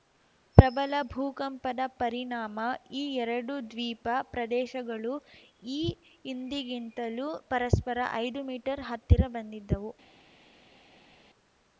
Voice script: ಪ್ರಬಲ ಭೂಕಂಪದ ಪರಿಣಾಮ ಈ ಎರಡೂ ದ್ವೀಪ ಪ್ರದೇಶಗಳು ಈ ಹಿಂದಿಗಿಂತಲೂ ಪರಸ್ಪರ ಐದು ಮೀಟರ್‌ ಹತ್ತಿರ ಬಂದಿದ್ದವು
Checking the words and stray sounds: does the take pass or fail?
pass